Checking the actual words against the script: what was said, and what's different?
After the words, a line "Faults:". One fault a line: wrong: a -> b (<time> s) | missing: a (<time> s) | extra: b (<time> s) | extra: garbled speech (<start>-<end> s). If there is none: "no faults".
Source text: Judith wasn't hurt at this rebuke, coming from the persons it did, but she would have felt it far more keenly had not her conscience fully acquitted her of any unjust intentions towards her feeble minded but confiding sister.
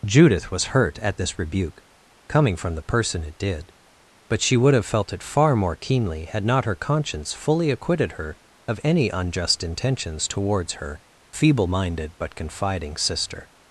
Judith was hurt at this rebuke, coming from the person it did, but she would have felt it far more keenly had not her conscience fully acquitted her of any unjust intentions towards her feeble minded but confiding sister.
Faults:
wrong: wasn't -> was (0.5 s)
wrong: persons -> person (2.8 s)